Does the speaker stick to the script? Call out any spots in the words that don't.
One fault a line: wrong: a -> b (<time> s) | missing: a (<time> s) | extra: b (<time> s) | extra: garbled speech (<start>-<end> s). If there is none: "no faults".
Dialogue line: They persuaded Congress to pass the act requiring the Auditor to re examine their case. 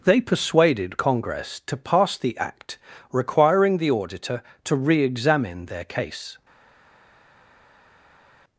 no faults